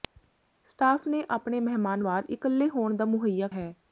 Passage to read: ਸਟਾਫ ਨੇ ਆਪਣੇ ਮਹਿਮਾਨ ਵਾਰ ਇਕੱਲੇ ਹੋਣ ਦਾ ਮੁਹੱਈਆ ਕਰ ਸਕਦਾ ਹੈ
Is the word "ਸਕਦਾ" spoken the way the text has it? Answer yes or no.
no